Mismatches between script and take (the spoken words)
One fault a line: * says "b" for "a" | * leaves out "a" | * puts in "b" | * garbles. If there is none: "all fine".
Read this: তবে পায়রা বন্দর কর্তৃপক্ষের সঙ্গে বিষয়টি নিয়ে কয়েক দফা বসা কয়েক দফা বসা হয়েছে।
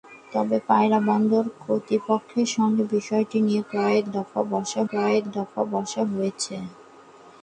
all fine